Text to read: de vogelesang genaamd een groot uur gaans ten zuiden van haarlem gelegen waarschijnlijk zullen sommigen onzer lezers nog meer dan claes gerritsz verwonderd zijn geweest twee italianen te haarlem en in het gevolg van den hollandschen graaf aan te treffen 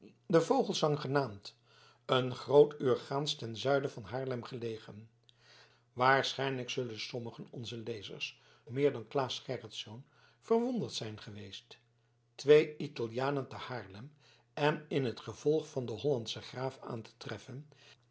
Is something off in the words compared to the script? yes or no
yes